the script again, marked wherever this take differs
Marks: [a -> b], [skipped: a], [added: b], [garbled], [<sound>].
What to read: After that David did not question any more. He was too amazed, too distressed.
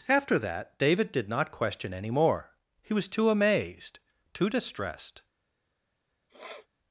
After that David did not question any more. He was too amazed, too distressed. [sniff]